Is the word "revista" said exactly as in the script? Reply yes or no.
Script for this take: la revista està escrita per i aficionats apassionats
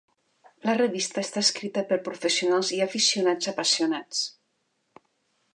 yes